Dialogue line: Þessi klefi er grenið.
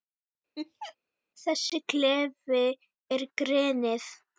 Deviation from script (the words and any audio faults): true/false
true